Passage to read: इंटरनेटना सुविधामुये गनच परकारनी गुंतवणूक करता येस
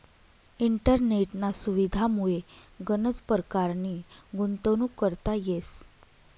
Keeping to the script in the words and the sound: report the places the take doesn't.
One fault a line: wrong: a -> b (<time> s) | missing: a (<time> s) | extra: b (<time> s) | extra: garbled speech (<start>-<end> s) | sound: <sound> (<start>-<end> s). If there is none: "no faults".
no faults